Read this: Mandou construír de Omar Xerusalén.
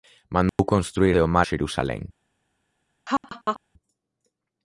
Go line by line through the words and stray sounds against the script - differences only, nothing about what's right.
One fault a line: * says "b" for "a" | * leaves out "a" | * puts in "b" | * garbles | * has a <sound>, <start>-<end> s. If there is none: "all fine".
* has a dropout, 0.5-0.6 s
* has a laugh, 3.1-3.6 s